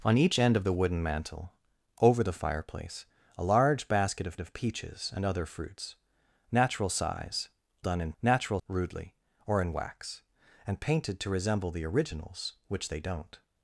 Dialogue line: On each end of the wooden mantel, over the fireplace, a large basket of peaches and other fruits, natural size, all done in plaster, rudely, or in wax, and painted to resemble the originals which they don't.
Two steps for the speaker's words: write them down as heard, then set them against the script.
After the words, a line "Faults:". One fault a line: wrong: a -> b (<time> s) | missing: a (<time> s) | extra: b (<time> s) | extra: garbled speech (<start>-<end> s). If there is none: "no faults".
On each end of the wooden mantel, over the fireplace, a large basket of of peaches and other fruits, natural size, done in natural, rudely, or in wax, and painted to resemble the originals which they don't.
Faults:
extra: of (4.4 s)
missing: all (7.5 s)
wrong: plaster -> natural (8.2 s)